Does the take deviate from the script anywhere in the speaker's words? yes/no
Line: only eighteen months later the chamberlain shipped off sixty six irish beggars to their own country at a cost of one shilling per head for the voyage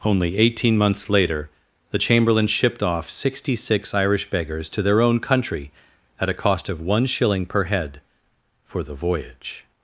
no